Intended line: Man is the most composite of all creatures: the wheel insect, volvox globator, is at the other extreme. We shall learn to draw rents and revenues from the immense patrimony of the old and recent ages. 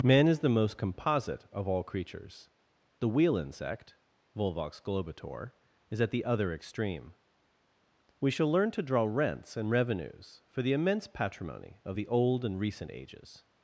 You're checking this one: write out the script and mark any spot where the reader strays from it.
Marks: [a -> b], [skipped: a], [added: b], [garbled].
Man is the most composite of all creatures: the wheel insect, volvox globator, is at the other extreme. We shall learn to draw rents and revenues [from -> for] the immense patrimony of the old and recent ages.